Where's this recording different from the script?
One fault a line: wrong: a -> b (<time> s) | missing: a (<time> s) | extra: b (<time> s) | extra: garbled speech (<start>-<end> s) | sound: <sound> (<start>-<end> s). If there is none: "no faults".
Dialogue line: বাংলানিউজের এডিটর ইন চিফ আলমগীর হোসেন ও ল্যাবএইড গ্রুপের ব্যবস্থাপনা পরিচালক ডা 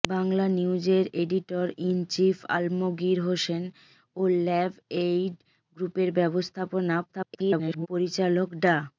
extra: garbled speech (7.1-7.9 s)